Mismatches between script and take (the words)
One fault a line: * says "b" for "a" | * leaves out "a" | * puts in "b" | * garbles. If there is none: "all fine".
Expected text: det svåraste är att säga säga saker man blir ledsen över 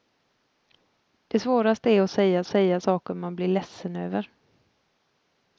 all fine